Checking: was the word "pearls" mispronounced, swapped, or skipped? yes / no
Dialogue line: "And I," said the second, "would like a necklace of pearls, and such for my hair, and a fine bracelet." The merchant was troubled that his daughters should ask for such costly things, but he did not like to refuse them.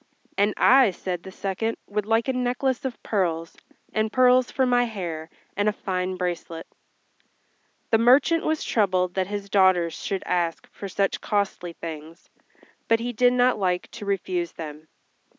no